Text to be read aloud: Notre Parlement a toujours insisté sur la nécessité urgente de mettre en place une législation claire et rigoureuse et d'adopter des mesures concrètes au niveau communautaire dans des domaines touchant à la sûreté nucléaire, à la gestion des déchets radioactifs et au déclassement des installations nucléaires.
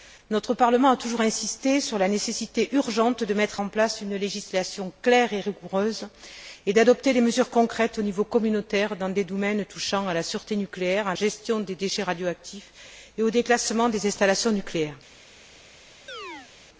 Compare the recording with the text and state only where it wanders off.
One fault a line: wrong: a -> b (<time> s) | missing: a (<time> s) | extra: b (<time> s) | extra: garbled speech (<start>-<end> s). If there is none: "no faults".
missing: la (11.1 s)